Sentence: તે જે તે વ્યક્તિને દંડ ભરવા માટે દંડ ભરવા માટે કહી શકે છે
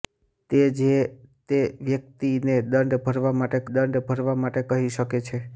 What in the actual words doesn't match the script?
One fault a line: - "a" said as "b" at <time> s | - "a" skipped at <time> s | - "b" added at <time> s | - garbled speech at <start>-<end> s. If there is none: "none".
none